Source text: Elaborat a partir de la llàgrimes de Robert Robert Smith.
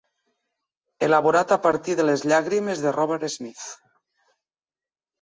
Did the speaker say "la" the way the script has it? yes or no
no